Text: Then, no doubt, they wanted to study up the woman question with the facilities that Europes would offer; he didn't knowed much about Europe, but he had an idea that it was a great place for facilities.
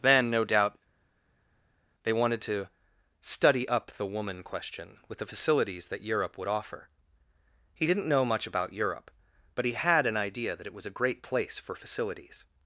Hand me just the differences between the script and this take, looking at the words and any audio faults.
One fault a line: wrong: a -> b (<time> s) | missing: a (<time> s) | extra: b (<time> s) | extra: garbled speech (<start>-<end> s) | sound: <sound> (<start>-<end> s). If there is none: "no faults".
wrong: Europes -> Europe (6.0 s)
wrong: knowed -> know (8.1 s)